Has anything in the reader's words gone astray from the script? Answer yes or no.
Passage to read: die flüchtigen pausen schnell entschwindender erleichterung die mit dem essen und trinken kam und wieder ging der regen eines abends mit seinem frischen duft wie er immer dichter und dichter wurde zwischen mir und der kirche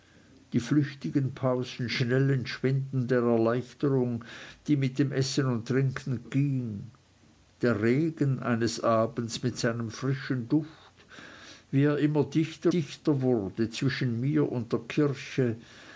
yes